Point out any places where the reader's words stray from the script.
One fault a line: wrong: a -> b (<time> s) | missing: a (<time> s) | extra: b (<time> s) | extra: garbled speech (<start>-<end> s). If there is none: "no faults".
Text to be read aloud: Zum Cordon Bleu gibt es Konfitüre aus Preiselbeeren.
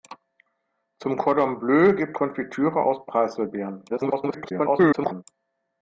missing: es (2.2 s)
extra: garbled speech (3.9-5.2 s)